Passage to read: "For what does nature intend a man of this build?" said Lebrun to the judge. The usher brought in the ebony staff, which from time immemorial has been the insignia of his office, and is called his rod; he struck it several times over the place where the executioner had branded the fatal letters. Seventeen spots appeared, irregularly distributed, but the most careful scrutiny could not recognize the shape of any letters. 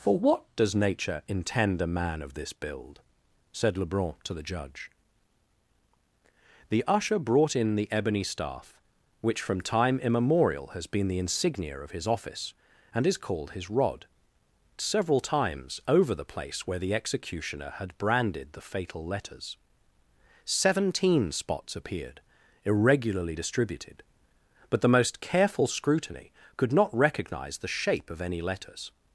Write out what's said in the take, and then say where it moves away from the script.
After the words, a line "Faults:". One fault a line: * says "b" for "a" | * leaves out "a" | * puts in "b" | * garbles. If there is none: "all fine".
"For what does nature intend a man of this build?" said Lebrun to the judge. The usher brought in the ebony staff, which from time immemorial has been the insignia of his office, and is called his rod; several times over the place where the executioner had branded the fatal letters. Seventeen spots appeared, irregularly distributed, but the most careful scrutiny could not recognize the shape of any letters.
Faults:
* leaves out "he struck it"